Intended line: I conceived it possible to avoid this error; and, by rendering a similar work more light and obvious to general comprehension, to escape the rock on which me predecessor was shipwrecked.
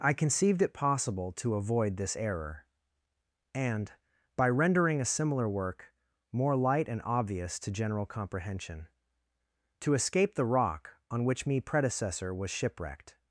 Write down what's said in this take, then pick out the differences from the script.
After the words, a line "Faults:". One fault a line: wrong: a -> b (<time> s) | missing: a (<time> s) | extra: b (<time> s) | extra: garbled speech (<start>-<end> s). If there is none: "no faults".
I conceived it possible to avoid this error; and, by rendering a similar work more light and obvious to general comprehension, to escape the rock on which me predecessor was shipwrecked.
Faults:
no faults